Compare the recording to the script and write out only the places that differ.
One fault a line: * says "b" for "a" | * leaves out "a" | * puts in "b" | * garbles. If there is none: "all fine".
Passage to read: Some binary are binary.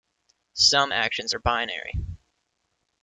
* says "actions" for "binary"